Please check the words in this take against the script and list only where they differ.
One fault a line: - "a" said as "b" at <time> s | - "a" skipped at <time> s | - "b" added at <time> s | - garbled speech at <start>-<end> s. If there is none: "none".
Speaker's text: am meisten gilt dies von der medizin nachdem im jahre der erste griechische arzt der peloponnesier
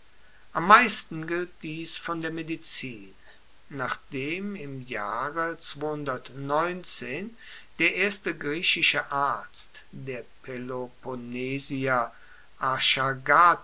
none